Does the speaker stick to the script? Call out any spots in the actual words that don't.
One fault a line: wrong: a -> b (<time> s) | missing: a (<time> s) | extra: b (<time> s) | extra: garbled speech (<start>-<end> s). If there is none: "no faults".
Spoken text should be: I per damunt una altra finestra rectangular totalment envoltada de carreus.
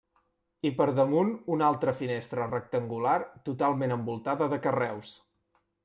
no faults